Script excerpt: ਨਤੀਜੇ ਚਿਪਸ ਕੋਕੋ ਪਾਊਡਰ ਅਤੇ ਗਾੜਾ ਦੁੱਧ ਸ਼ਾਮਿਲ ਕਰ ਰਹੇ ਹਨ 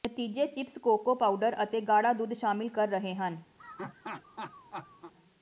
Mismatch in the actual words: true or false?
false